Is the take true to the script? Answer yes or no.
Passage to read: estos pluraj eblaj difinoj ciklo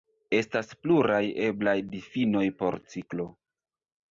no